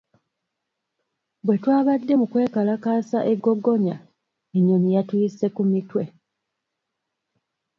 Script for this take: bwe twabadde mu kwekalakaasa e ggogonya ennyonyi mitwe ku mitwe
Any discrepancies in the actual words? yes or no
yes